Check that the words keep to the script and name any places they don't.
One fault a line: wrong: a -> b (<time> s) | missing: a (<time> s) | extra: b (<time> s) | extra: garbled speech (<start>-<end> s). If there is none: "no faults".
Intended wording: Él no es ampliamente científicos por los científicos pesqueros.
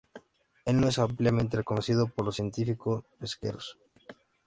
wrong: científicos -> reconocido (1.5 s)